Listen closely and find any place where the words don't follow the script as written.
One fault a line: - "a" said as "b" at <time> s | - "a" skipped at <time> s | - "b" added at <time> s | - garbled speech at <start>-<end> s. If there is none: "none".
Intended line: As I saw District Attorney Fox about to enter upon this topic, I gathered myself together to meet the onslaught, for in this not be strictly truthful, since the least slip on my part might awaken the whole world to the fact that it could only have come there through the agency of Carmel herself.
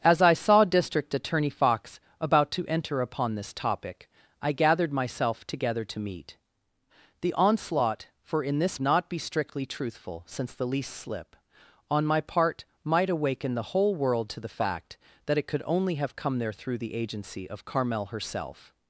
none